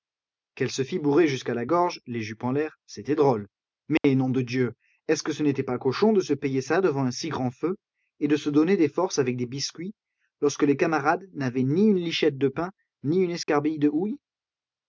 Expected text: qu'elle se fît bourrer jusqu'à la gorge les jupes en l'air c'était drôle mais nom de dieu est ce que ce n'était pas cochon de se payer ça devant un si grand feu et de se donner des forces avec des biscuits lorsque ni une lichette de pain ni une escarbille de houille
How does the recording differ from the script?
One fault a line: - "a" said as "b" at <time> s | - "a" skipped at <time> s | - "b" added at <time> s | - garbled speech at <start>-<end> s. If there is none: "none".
- "les camarades n'avaient" added at 10.6 s